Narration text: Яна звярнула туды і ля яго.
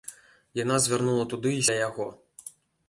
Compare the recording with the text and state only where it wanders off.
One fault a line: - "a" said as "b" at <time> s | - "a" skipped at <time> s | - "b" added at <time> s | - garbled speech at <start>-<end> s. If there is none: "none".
none